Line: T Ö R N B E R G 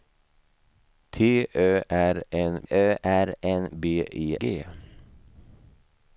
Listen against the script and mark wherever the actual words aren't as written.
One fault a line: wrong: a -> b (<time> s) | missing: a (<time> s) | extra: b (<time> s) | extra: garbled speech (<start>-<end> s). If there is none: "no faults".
extra: Ö R N (2.7 s)
missing: R (4.4 s)